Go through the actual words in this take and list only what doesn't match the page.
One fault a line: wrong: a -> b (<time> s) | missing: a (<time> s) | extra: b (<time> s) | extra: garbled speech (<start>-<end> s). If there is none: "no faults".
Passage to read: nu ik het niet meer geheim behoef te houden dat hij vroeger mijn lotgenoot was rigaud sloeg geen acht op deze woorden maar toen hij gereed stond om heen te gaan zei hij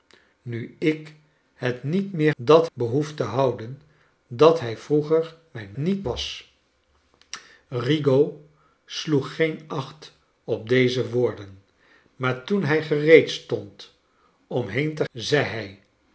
wrong: geheim -> dat (2.4 s)
wrong: lotgenoot -> niet (5.8 s)
missing: gaan (15.1 s)